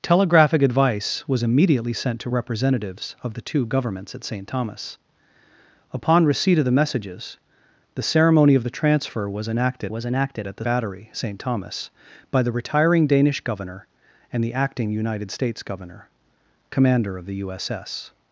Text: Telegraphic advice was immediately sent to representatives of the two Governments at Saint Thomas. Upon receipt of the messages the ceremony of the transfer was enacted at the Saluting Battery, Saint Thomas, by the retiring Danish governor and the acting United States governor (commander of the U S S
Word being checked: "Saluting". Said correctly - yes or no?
no